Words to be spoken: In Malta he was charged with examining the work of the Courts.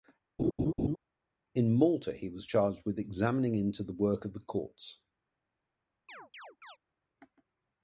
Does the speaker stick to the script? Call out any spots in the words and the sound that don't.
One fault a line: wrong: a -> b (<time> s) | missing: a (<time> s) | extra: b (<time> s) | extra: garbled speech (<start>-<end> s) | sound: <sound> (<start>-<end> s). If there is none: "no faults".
sound: laugh (0.4-1.0 s)
extra: into (3.6 s)
sound: chirp (6.1-6.8 s)